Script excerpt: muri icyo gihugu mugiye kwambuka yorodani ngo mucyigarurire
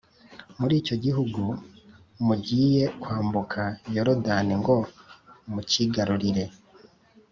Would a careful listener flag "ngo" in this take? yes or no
no